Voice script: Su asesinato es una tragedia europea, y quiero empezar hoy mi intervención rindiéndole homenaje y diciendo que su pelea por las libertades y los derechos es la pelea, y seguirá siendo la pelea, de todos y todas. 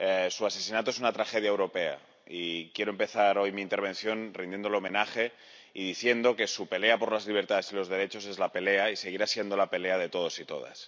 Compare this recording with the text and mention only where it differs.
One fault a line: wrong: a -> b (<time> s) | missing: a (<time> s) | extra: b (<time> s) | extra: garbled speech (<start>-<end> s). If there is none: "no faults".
no faults